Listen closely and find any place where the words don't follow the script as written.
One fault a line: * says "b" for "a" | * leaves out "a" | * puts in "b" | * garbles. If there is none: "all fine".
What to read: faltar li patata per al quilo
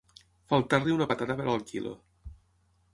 * puts in "una"